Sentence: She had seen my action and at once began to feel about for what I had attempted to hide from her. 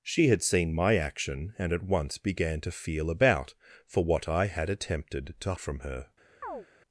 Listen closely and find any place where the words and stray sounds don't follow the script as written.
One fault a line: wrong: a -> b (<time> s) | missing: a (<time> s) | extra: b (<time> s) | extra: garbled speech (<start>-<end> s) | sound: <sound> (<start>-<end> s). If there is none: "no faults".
missing: hide (5.5 s)
sound: chirp (6.4-6.7 s)